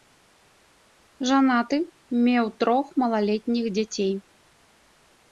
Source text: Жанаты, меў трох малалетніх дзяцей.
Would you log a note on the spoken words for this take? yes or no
no